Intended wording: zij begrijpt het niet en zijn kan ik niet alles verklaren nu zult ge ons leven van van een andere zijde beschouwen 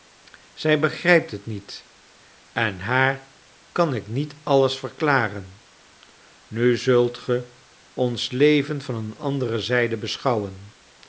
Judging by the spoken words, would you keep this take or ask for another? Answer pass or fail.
fail